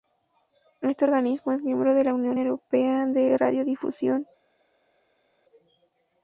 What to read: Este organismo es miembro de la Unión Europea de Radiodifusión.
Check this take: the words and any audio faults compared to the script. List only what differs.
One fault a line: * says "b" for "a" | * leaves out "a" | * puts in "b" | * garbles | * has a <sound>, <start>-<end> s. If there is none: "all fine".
all fine